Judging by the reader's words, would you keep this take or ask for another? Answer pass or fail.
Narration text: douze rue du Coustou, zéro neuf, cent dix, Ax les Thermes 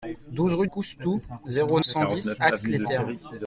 fail